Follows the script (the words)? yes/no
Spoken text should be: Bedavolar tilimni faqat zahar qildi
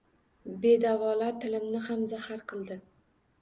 no